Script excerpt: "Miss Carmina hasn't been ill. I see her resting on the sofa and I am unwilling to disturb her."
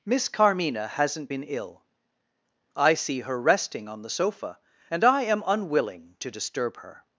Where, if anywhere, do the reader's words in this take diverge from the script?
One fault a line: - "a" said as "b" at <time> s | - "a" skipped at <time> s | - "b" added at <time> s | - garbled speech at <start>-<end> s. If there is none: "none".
none